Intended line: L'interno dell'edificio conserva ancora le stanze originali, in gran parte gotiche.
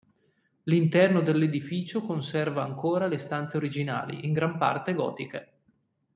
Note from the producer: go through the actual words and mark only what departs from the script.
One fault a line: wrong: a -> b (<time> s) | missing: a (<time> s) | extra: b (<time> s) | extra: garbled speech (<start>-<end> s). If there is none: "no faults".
no faults